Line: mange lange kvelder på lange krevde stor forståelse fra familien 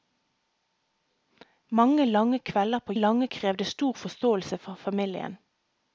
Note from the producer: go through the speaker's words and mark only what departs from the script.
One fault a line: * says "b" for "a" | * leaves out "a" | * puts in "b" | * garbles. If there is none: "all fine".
all fine